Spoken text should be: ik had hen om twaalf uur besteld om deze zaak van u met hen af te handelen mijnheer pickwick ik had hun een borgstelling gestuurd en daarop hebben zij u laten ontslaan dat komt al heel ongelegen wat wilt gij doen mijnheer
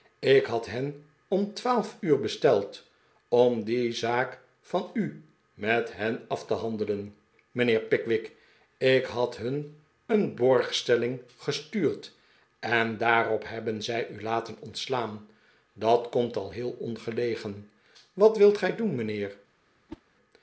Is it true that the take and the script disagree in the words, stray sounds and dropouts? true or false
true